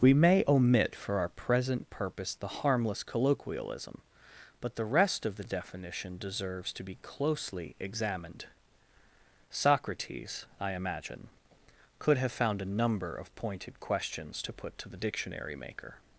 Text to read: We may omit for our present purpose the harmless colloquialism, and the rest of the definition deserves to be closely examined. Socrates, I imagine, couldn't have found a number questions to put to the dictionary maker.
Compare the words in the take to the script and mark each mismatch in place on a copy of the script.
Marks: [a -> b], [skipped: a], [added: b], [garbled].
We may omit for our present purpose the harmless colloquialism, [and -> but] the rest of the definition deserves to be closely examined. Socrates, I imagine, [couldn't -> could] have found a number [added: of pointed] questions to put to the dictionary maker.